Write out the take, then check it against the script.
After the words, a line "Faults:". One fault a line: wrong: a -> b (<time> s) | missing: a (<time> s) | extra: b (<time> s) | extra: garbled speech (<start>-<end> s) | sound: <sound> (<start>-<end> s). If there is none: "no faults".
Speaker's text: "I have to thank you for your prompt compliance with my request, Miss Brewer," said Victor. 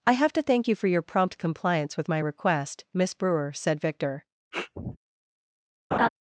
"I have to thank you for your prompt compliance with my request, Miss Brewer," said Victor.
Faults:
sound: sniff (4.5-5.0 s)
sound: laugh (5.9-6.1 s)